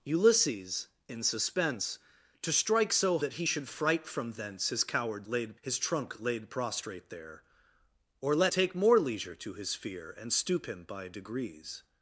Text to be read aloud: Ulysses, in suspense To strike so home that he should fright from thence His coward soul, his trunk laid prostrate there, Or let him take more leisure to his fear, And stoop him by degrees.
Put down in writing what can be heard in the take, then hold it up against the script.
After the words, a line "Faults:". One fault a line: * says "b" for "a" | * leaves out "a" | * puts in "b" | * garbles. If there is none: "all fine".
Ulysses, in suspense To strike so that he should fright from thence His coward laid, his trunk laid prostrate there, Or let take more leisure to his fear, And stoop him by degrees.
Faults:
* leaves out "home"
* says "laid" for "soul"
* leaves out "him"